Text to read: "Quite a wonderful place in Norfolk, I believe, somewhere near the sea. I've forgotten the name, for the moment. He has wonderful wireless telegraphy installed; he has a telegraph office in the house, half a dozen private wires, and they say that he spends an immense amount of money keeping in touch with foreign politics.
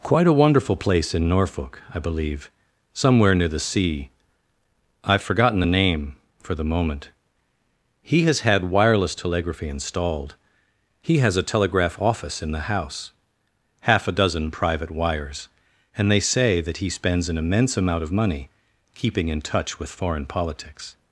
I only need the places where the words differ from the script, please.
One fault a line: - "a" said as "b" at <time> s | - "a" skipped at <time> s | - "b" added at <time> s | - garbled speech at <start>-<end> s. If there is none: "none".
- "wonderful" said as "had" at 8.4 s